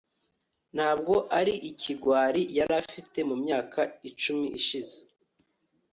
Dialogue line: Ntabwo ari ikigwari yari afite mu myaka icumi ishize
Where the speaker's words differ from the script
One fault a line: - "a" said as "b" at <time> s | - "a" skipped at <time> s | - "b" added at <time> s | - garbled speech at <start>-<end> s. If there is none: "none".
none